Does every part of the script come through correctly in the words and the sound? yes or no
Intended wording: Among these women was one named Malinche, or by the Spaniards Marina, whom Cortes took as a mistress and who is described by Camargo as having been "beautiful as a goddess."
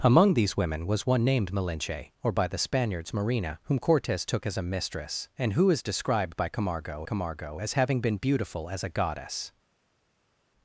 no